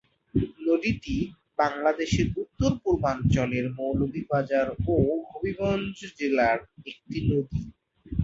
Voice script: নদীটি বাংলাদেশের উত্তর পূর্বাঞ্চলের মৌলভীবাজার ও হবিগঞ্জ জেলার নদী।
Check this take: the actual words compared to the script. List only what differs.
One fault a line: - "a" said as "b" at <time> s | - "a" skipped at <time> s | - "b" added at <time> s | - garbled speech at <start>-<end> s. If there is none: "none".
- "একটি" added at 6.9 s